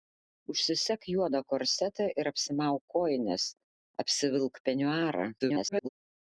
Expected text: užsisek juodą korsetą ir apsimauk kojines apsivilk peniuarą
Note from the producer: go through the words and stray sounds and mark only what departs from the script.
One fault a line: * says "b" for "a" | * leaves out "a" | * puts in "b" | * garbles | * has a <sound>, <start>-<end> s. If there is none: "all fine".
* garbles